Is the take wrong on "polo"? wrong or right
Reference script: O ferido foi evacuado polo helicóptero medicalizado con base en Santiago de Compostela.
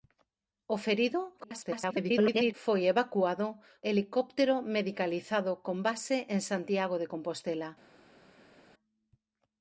wrong